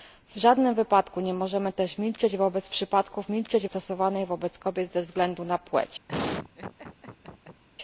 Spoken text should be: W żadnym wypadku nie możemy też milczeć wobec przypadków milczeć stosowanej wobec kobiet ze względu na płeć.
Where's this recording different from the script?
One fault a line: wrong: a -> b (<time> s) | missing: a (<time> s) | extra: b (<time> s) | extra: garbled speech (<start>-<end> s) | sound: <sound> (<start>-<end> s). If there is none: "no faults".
sound: laugh (6.1-7.6 s)